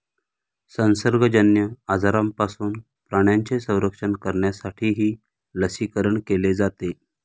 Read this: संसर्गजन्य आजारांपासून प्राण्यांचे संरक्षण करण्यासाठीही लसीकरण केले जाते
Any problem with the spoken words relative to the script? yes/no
no